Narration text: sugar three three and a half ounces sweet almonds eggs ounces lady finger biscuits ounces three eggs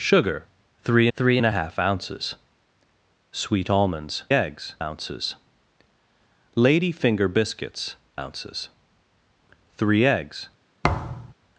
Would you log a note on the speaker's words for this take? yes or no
no